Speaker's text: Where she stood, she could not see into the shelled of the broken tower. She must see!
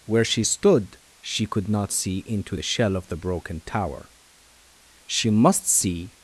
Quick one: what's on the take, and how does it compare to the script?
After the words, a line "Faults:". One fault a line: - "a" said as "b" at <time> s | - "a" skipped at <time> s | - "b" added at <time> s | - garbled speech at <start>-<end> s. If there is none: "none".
Where she stood, she could not see into the shell of the broken tower. She must see!
Faults:
- "shelled" said as "shell" at 2.6 s